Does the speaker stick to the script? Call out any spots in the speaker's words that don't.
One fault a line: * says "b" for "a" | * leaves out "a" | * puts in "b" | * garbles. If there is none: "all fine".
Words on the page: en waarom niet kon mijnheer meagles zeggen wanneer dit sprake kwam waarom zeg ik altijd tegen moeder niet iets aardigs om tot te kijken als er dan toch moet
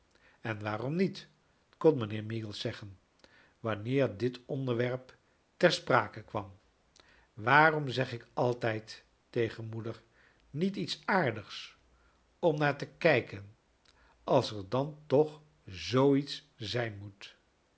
* puts in "onderwerp ter"
* says "naar" for "tot"
* puts in "zoo iets zijn"